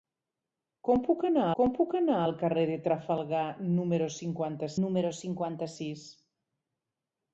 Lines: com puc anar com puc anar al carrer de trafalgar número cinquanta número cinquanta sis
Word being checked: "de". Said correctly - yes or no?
yes